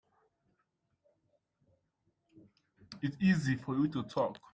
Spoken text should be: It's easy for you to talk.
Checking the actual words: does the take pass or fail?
pass